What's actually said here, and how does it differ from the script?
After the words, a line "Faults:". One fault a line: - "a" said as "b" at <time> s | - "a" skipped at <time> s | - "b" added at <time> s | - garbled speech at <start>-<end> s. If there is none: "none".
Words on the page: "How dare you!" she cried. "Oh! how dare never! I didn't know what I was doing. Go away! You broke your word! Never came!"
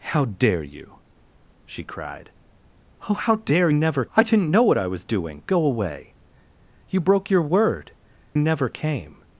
"How dare you!" she cried. "Oh! how dare never! I didn't know what I was doing. Go away! You broke your word! Never came!"
Faults:
none